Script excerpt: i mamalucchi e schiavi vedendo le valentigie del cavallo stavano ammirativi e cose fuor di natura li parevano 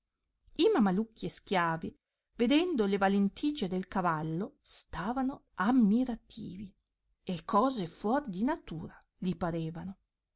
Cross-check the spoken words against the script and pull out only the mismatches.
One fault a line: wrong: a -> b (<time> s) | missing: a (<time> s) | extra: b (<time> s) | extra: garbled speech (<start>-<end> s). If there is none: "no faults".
no faults